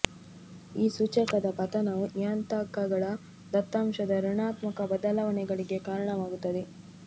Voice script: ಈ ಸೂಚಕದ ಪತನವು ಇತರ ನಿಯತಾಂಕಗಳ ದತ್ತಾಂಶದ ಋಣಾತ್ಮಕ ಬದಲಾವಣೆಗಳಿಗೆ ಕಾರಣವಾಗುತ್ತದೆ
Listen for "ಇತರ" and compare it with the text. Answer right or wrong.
wrong